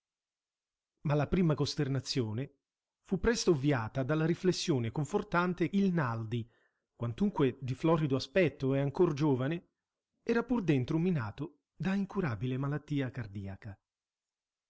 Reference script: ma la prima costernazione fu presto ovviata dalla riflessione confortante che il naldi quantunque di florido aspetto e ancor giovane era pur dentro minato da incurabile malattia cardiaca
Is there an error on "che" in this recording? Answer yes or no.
yes